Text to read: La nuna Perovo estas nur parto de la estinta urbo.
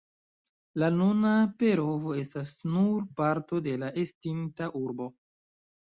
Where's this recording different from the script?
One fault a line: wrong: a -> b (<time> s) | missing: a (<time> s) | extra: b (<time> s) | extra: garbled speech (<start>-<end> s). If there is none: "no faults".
no faults